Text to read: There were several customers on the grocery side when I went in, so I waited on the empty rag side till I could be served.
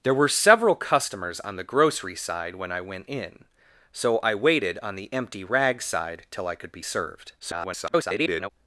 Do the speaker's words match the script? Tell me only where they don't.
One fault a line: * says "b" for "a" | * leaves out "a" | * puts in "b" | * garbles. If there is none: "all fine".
* garbles